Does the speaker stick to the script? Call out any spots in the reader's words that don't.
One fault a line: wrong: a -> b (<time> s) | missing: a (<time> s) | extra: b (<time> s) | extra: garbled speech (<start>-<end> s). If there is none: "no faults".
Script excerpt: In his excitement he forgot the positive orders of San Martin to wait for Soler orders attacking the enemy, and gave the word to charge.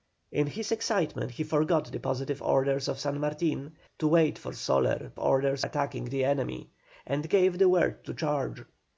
no faults